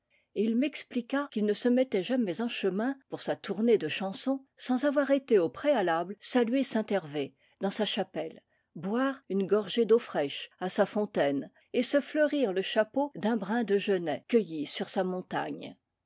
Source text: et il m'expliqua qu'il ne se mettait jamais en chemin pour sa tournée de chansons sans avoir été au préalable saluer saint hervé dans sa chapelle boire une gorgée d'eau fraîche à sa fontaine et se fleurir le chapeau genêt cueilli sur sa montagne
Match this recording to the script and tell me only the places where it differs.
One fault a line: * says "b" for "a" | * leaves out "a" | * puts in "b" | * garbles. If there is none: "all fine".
* puts in "d'un brin de"